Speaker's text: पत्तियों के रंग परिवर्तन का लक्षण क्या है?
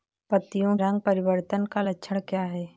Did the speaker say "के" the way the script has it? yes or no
no